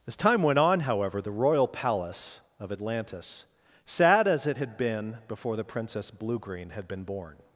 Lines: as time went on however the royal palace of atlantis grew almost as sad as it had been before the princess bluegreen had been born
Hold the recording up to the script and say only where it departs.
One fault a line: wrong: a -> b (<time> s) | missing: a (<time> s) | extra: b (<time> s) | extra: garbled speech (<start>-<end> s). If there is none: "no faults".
missing: grew almost as (3.4 s)